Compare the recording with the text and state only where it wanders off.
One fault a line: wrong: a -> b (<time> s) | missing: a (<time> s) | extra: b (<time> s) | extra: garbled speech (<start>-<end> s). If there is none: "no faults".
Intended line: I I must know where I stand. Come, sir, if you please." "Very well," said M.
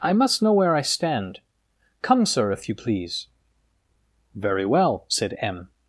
missing: I (0.1 s)